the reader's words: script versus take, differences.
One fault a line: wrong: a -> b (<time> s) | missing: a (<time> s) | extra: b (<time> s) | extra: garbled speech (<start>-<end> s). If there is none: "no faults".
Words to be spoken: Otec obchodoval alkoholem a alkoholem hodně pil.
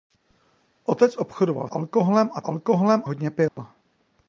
no faults